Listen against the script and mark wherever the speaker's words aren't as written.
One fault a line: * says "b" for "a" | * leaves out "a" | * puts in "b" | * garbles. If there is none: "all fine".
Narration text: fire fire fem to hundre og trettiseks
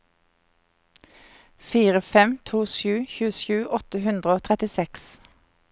* leaves out "fire"
* puts in "sju tjuesju åtte"